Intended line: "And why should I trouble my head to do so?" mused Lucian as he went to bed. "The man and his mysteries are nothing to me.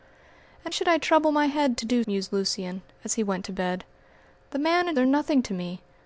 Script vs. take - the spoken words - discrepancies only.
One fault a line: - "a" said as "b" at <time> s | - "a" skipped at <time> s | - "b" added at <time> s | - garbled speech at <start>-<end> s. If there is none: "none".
- "why" skipped at 0.7 s
- "so" skipped at 2.0 s
- "his mysteries" skipped at 5.0 s